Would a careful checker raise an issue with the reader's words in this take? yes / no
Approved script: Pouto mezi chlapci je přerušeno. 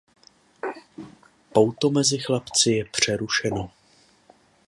no